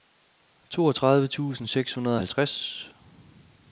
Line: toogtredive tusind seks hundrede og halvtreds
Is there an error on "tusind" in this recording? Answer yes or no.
no